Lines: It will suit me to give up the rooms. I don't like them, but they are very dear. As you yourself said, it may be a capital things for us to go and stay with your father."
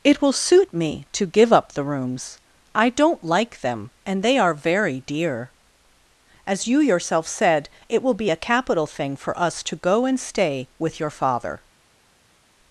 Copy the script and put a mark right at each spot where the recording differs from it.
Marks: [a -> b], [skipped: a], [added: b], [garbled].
It will suit me to give up the rooms. I don't like them, [but -> and] they are very dear. As you yourself said, it [may -> will] be a capital [things -> thing] for us to go and stay with your father."